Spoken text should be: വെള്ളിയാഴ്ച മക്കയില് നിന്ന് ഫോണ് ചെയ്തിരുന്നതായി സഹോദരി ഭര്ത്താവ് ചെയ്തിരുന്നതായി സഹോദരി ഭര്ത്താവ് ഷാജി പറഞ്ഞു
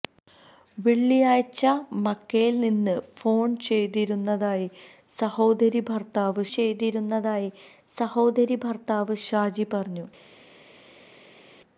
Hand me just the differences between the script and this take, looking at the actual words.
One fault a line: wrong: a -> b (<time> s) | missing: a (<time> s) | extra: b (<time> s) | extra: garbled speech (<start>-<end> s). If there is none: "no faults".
no faults